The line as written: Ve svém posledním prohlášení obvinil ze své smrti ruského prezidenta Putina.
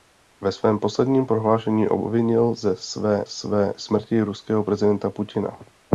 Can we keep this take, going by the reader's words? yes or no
no